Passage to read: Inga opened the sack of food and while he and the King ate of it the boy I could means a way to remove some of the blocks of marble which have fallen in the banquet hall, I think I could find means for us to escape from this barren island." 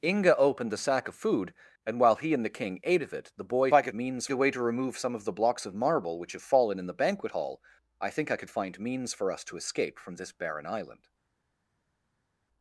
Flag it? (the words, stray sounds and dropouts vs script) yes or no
no